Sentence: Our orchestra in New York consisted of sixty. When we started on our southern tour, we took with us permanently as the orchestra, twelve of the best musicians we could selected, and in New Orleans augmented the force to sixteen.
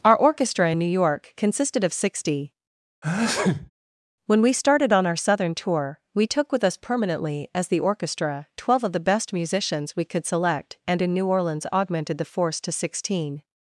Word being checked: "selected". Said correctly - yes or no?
no